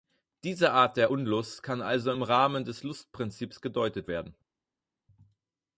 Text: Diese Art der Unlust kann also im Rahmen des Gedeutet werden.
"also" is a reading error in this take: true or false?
false